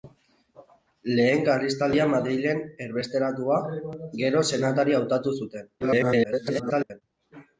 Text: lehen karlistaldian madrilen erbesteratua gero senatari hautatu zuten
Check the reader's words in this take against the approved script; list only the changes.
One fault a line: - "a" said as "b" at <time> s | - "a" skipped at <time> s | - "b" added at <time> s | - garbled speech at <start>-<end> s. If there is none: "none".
- garbled speech at 5.8-7.0 s